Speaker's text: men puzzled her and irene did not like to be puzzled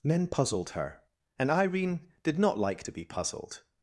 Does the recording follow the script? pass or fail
pass